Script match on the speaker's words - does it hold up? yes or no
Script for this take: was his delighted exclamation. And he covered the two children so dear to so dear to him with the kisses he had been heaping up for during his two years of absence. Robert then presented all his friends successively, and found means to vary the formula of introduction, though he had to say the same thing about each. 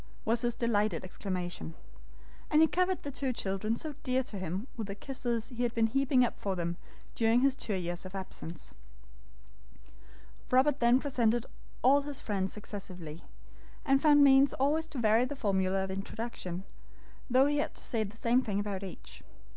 no